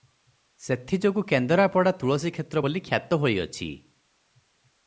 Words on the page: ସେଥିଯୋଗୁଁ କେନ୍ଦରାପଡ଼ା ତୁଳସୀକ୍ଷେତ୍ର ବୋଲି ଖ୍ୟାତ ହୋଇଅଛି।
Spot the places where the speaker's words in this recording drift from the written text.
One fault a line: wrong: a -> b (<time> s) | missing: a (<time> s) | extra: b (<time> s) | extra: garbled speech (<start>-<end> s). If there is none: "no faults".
no faults